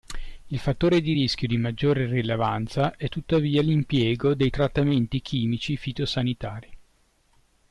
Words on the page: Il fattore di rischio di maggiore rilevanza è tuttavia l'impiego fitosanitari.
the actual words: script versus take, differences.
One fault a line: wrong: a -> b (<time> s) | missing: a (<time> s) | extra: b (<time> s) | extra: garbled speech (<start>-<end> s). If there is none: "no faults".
extra: dei trattamenti chimici (4.3 s)